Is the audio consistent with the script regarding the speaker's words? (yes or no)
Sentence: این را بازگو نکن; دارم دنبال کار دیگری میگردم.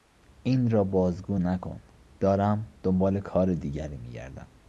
yes